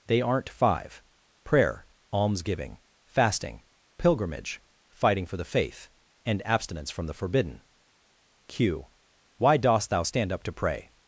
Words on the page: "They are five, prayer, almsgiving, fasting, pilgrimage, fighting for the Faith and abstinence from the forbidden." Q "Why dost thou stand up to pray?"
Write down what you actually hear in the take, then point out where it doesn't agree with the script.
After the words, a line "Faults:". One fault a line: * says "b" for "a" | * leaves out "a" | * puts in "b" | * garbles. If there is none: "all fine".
"They aren't five, prayer, almsgiving, fasting, pilgrimage, fighting for the Faith and abstinence from the forbidden." Q "Why dost thou stand up to pray?"
Faults:
* says "aren't" for "are"